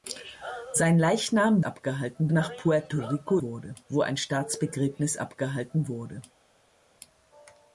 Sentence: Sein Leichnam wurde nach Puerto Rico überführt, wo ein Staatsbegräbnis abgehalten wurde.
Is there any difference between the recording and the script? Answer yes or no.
yes